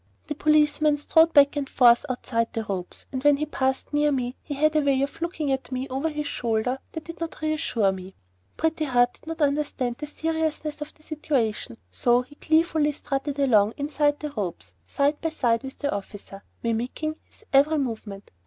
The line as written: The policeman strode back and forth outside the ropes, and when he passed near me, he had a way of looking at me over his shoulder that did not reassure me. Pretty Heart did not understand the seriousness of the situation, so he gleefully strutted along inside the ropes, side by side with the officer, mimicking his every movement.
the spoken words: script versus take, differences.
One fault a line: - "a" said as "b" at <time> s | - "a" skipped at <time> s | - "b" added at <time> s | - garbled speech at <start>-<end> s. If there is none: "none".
none